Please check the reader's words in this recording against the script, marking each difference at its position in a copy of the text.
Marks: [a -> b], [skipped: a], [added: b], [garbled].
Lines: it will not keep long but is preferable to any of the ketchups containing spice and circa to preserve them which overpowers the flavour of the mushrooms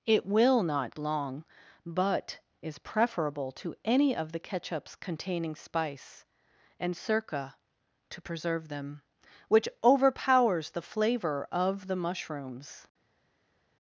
it will not [skipped: keep] long but is preferable to any of the ketchups containing spice and circa to preserve them which overpowers the flavour of the mushrooms